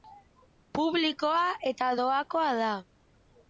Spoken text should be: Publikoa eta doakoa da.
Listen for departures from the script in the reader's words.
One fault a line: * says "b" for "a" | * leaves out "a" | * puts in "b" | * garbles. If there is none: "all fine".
all fine